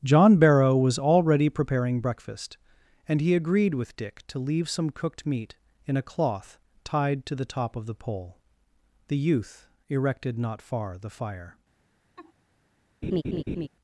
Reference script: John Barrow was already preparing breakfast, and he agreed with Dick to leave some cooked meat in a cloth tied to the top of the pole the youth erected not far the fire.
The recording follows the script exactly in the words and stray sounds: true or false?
false